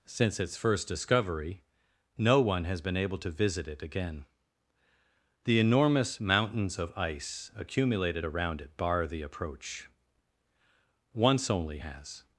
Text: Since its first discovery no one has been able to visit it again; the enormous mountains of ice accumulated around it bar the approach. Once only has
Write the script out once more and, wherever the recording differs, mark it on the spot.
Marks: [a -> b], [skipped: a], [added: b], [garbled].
Since its first discovery no one has been able to visit it again; the enormous mountains of ice accumulated around it bar the approach. Once only has